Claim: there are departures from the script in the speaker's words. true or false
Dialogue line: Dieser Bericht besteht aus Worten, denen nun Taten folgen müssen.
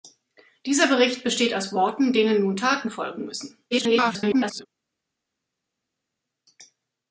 true